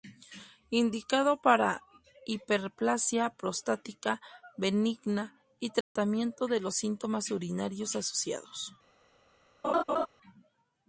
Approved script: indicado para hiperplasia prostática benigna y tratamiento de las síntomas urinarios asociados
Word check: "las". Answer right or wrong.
wrong